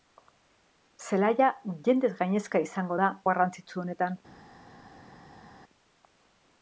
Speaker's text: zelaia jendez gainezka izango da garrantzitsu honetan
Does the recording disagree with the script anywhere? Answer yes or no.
no